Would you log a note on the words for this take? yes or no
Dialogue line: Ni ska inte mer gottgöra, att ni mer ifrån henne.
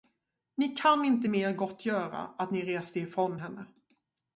yes